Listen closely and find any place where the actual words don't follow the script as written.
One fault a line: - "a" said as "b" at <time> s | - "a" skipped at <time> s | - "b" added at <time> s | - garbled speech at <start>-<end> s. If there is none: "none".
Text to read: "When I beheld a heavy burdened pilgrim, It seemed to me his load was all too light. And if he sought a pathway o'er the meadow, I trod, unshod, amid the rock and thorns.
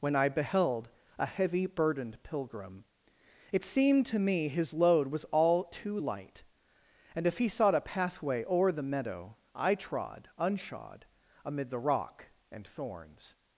none